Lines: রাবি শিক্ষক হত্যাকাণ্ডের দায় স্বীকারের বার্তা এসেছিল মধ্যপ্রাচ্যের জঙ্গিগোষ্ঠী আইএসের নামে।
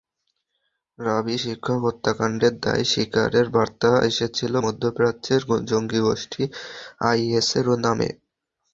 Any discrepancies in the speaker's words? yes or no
no